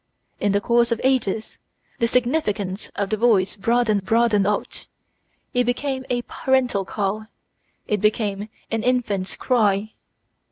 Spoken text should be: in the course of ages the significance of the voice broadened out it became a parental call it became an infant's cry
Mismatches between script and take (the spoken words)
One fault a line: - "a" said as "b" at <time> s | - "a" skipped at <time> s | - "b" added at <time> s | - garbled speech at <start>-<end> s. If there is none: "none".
- "broadened" added at 4.0 s